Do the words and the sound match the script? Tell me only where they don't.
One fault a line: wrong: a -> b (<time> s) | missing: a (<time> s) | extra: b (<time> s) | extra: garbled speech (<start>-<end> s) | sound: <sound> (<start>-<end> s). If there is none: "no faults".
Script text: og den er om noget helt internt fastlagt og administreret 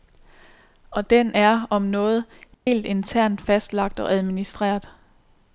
sound: dropout (2.5-2.7 s)